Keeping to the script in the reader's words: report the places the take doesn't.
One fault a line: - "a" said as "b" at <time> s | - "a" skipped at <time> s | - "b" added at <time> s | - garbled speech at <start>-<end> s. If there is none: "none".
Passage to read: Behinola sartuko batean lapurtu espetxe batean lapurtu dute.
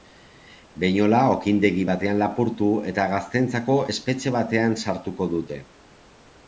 - "sartuko" said as "okindegi" at 1.3 s
- "eta gazteentzako" added at 2.9 s
- "lapurtu" said as "sartuko" at 4.9 s